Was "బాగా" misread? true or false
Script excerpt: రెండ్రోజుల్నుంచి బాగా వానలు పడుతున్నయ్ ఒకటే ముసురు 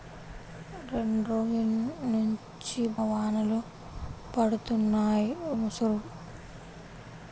true